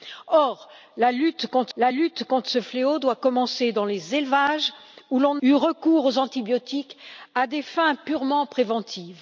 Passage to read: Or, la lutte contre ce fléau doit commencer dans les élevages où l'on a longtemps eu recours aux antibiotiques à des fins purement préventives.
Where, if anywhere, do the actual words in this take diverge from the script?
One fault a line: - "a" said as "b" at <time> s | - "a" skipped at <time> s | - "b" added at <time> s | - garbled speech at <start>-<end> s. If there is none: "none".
- "la lutte contre" added at 1.8 s
- "a longtemps" skipped at 5.4 s